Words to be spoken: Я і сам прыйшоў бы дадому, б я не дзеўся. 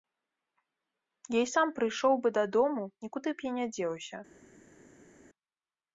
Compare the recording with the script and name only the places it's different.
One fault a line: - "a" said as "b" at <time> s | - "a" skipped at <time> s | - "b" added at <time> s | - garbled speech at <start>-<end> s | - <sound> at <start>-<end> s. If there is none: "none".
- "нікуды" added at 3.1 s